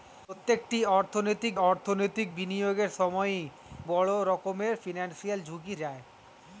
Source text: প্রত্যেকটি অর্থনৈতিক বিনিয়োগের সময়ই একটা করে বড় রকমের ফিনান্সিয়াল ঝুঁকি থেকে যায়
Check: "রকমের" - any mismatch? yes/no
no